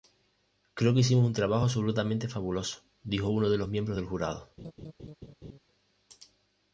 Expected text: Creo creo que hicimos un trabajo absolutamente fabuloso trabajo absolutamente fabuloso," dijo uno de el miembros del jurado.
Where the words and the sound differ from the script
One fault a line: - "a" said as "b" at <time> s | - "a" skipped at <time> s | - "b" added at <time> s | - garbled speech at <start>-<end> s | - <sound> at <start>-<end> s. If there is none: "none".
- "creo" skipped at 0.9 s
- "trabajo absolutamente fabuloso" skipped at 2.8 s
- "el" said as "los" at 3.6 s
- laugh at 4.6-5.6 s